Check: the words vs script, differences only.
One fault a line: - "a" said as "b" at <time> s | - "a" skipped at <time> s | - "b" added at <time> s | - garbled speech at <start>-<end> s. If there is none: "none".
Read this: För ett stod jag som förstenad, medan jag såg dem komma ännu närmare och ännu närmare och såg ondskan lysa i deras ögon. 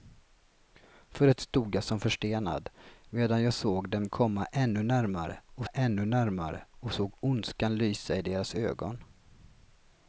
none